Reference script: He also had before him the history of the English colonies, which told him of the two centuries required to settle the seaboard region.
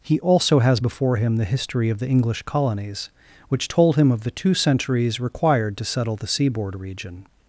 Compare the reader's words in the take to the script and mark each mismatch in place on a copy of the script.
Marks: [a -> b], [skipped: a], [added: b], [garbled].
He also [had -> has] before him the history of the English colonies, which told him of the two centuries required to settle the seaboard region.